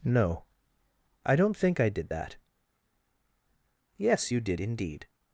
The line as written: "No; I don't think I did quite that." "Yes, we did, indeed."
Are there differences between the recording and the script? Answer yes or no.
yes